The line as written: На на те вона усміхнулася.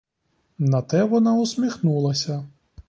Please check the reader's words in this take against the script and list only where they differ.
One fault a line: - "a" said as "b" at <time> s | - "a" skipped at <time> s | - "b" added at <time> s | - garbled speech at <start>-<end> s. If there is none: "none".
- "на" skipped at 0.8 s